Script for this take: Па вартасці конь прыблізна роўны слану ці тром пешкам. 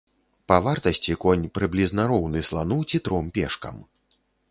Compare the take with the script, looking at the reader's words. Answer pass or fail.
pass